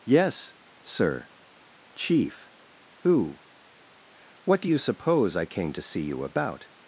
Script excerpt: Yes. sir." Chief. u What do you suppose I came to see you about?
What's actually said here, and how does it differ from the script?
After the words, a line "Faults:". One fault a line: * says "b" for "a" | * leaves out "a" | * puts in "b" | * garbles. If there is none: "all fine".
Yes. sir." Chief. who What do you suppose I came to see you about?
Faults:
* says "who" for "u"